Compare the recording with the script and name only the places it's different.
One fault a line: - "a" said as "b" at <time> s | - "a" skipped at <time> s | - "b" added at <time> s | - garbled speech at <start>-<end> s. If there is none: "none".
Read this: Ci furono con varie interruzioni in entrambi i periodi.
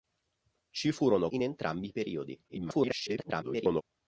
- "con varie interruzioni" skipped at 1.3 s
- garbled speech at 2.5-3.8 s